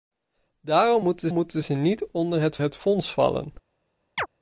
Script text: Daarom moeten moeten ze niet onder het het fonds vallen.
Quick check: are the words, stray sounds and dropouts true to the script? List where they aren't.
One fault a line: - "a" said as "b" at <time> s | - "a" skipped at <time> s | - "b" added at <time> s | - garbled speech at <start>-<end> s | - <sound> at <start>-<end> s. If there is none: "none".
- chirp at 4.2-4.3 s